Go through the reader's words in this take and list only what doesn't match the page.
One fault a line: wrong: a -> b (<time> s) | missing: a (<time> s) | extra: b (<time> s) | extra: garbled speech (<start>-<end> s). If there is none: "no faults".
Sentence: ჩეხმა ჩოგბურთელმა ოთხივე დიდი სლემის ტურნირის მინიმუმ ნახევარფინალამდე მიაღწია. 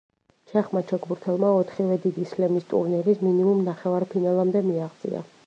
no faults